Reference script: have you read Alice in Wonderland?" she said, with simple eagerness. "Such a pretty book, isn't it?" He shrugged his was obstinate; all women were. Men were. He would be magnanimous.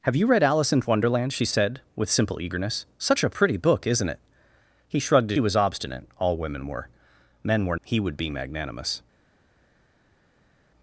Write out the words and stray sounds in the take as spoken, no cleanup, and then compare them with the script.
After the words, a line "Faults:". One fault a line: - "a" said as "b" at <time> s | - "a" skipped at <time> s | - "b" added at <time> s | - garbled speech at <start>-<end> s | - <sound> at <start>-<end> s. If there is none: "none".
have you read Alice in Wonderland?" she said, with simple eagerness. "Such a pretty book, isn't it?" He shrugged his was obstinate; all women were. Men were. He would be magnanimous.
Faults:
none